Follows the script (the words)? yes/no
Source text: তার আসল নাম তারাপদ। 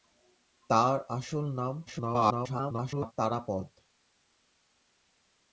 no